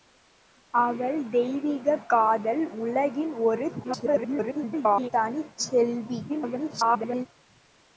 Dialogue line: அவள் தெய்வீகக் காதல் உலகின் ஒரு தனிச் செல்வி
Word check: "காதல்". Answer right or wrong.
right